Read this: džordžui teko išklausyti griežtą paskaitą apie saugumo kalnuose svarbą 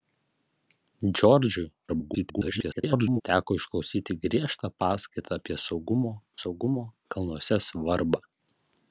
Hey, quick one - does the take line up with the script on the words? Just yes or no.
no